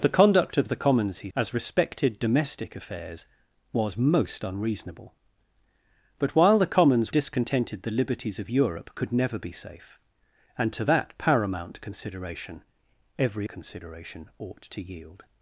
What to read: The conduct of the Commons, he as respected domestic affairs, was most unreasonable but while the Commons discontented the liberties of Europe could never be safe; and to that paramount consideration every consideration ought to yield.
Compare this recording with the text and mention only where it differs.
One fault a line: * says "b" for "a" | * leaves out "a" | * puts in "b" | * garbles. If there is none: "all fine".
all fine